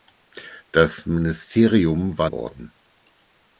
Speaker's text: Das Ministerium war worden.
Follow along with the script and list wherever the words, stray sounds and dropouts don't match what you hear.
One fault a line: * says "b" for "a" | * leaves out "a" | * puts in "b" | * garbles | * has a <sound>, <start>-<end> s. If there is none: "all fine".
all fine